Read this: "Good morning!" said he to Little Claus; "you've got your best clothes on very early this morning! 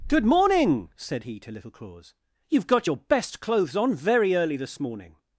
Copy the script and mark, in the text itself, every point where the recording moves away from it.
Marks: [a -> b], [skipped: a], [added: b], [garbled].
"Good morning!" said he to Little Claus; "you've got your best clothes on very early this morning!